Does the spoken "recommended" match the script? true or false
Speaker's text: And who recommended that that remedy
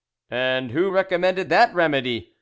true